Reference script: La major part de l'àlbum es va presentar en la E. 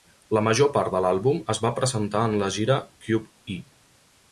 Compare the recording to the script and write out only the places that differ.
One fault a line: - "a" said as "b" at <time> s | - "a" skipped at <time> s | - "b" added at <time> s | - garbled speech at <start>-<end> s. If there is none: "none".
- "gira Cube" added at 2.6 s